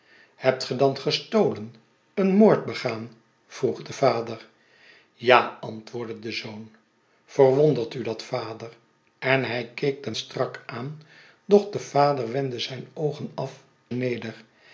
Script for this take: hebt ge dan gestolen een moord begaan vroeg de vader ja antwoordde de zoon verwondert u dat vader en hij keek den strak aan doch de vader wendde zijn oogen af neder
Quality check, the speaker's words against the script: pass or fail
pass